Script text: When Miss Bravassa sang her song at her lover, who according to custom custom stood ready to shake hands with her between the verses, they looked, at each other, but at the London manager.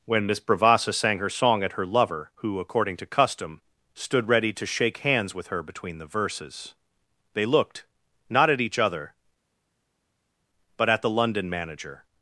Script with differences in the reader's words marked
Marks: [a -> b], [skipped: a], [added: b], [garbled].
When Miss Bravassa sang her song at her lover, who according to custom [skipped: custom] stood ready to shake hands with her between the verses, they looked, [added: not] at each other, but at the London manager.